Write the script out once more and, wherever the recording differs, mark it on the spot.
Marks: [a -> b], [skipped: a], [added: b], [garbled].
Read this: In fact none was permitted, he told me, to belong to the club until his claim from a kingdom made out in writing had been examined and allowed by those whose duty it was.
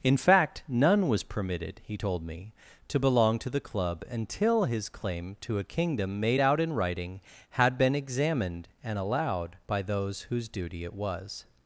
In fact none was permitted, he told me, to belong to the club until his claim [from -> to] a kingdom made out in writing had been examined and allowed by those whose duty it was.